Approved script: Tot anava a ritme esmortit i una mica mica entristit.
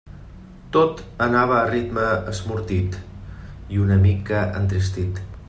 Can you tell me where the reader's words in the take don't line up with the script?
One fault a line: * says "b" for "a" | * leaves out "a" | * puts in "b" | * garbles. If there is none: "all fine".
* leaves out "mica"